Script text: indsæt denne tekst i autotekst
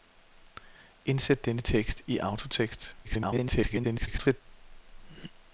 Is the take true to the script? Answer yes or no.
no